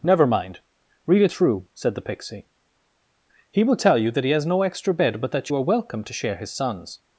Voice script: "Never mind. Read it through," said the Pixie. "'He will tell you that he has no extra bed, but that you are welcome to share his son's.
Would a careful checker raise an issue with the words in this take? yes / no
no